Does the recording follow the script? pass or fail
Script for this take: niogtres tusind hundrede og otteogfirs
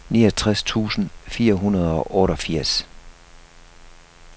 fail